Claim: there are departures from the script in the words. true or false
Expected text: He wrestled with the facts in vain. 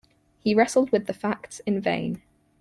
false